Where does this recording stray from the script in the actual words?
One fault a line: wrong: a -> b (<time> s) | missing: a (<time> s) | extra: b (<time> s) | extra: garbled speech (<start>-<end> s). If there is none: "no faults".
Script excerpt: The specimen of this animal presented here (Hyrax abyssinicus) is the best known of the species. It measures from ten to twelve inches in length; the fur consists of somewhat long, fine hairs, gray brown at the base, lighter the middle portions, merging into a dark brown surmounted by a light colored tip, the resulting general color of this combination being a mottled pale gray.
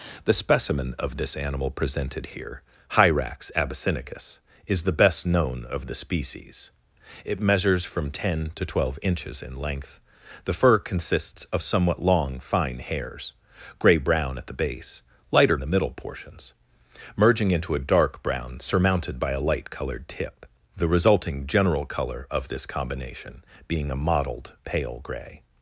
no faults